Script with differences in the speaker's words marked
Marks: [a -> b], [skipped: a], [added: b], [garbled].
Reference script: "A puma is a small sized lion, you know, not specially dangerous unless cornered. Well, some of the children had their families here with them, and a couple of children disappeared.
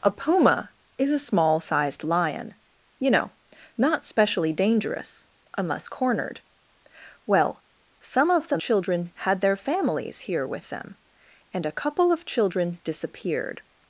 "A puma is a small sized lion, you know, not specially dangerous unless cornered. Well, some of the children had their families here with them, and a couple of children disappeared.